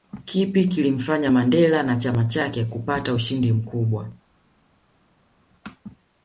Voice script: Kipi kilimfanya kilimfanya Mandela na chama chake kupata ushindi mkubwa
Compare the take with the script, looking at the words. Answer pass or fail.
fail